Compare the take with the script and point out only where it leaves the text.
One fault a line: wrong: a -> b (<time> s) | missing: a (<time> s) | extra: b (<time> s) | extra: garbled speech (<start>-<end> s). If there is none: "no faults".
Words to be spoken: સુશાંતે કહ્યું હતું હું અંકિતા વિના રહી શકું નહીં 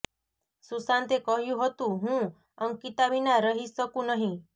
no faults